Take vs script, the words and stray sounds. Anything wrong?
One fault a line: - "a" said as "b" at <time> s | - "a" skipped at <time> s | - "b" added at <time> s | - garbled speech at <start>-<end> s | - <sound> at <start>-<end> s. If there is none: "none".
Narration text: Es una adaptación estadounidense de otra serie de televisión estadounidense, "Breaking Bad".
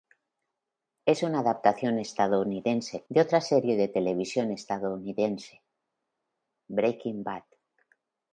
none